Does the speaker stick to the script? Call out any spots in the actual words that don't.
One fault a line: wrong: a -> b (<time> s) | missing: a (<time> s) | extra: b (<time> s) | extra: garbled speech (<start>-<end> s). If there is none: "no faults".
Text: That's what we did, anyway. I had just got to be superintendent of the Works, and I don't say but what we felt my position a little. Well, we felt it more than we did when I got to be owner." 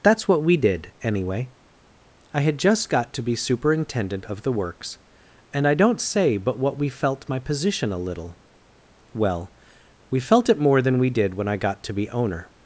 no faults